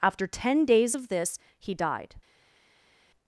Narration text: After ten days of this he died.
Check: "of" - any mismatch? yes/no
no